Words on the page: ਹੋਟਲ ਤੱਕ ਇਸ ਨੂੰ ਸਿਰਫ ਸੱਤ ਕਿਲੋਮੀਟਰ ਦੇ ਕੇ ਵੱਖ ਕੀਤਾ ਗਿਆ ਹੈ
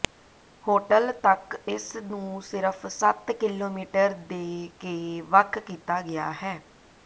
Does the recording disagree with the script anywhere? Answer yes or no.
no